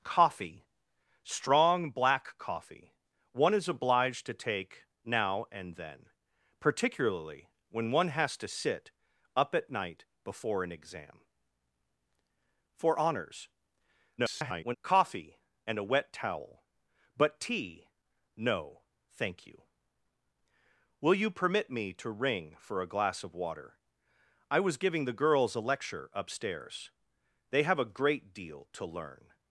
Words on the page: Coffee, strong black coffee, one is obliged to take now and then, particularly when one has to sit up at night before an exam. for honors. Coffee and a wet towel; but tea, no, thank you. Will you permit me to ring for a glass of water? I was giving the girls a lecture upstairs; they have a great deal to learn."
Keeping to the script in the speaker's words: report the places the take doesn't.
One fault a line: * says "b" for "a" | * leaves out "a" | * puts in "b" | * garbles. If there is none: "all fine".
* garbles